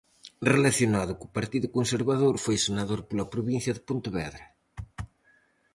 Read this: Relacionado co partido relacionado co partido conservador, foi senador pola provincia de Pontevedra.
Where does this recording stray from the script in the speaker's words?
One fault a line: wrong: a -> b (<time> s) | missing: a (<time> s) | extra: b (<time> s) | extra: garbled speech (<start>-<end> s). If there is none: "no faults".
missing: relacionado co partido (1.7 s)